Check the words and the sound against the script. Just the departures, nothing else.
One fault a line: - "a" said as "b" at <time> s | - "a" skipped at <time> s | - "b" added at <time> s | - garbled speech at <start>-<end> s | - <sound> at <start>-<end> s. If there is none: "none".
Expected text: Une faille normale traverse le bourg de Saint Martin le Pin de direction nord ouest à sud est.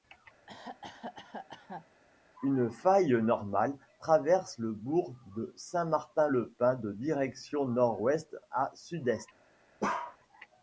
- cough at 0.5-1.9 s
- bark at 9.8-10.2 s